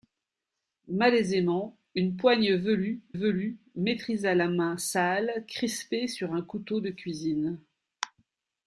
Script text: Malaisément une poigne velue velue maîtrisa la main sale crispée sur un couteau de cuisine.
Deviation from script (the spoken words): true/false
false